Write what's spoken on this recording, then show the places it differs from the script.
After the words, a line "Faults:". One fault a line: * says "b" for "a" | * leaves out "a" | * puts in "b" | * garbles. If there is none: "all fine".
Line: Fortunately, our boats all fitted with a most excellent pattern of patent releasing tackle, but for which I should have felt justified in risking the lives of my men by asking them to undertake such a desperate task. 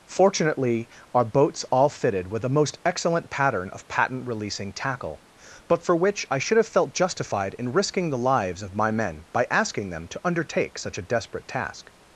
Fortunately, our boats all fitted with a most excellent pattern of patent releasing tackle, but for which I should have felt justified in risking the lives of my men by asking them to undertake such a desperate task.
Faults:
all fine